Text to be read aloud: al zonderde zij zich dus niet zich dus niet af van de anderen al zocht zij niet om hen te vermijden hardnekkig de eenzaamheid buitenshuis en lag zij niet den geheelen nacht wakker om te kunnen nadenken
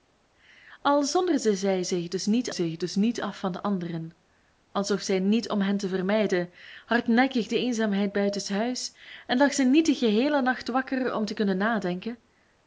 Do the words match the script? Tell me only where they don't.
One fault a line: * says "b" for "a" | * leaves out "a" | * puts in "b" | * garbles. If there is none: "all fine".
all fine